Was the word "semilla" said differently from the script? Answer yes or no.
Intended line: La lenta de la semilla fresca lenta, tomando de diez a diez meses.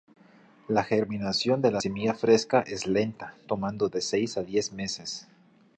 no